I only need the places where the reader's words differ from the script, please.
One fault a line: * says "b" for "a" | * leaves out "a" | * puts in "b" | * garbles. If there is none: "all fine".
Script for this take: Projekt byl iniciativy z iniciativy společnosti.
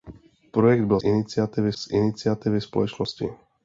all fine